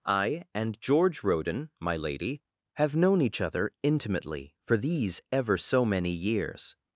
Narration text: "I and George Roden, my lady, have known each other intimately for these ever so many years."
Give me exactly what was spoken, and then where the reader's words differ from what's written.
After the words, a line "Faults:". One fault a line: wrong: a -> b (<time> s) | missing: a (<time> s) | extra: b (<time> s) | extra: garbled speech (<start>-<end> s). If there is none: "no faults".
"I and George Roden, my lady, have known each other intimately for these ever so many years."
Faults:
no faults